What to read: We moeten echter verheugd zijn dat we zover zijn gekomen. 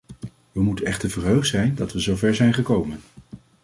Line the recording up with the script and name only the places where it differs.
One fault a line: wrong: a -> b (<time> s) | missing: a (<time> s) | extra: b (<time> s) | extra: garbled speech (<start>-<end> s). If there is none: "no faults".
no faults